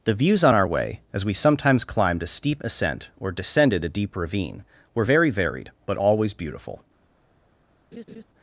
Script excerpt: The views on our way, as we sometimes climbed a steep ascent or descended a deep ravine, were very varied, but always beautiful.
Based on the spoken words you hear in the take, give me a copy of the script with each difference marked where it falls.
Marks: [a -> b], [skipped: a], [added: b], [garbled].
The views on our way, as we sometimes climbed a steep ascent or descended a deep ravine, were very varied, but always beautiful.